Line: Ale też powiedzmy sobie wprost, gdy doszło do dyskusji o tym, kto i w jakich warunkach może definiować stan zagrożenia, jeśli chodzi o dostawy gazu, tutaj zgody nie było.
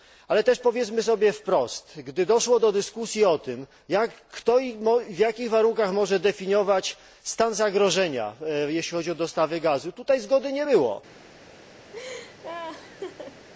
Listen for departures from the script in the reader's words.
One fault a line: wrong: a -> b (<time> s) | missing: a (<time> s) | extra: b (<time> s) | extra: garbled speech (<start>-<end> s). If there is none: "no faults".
no faults